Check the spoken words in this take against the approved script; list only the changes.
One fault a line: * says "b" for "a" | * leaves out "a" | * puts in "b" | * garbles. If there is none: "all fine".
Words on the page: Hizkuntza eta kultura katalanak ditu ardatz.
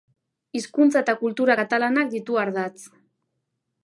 all fine